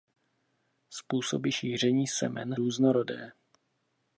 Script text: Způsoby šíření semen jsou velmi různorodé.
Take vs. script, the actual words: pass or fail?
fail